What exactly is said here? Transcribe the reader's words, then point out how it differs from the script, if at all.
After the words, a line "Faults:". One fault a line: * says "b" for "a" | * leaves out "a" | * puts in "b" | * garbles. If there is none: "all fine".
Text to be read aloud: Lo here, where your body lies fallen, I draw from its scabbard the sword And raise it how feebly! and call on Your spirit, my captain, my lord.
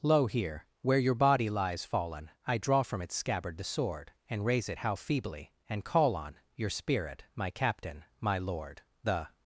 Lo here, where your body lies fallen, I draw from its scabbard the sword And raise it how feebly! and call on Your spirit, my captain, my lord. The
Faults:
* puts in "The"